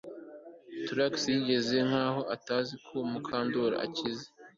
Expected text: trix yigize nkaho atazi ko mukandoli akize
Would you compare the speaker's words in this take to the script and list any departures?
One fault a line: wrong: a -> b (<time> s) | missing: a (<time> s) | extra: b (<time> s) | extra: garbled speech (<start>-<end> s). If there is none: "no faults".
no faults